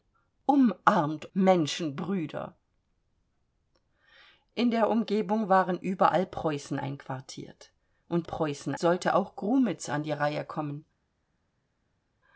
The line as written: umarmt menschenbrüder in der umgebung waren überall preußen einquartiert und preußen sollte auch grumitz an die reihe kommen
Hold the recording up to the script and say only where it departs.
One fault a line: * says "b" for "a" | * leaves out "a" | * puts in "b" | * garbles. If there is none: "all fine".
all fine